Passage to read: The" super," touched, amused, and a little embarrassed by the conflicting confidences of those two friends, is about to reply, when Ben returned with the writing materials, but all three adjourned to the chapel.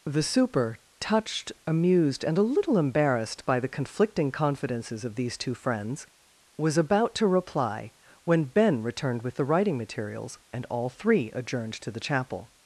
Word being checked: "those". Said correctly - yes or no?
no